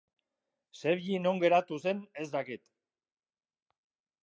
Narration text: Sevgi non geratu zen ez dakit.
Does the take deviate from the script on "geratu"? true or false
false